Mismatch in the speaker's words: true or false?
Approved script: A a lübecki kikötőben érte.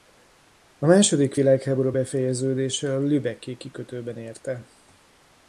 true